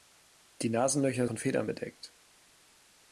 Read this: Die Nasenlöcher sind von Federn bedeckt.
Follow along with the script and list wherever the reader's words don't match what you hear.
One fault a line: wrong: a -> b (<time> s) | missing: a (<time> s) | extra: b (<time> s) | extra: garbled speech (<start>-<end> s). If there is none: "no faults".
missing: sind (1.3 s)